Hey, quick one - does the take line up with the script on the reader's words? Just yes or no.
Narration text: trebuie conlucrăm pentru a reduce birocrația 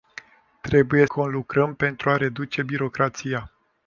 yes